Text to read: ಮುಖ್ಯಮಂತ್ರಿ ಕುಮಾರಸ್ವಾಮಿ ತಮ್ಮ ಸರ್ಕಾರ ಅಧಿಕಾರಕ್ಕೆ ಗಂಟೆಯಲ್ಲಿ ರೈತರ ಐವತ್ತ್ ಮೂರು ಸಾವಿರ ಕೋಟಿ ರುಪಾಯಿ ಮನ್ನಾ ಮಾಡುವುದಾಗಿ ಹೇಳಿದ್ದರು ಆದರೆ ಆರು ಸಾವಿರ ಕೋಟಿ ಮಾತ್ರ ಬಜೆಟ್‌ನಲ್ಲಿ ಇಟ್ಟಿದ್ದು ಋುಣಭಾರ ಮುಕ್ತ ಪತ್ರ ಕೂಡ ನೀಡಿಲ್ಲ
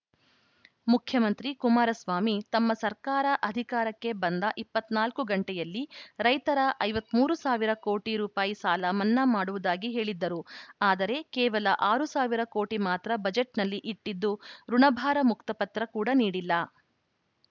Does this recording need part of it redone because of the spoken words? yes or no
yes